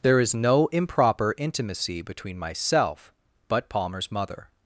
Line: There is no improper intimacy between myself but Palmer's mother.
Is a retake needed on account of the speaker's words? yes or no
no